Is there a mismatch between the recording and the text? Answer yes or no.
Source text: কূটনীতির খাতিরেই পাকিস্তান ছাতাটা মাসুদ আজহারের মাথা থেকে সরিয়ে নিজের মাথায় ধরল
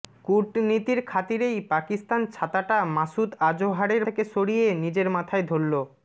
yes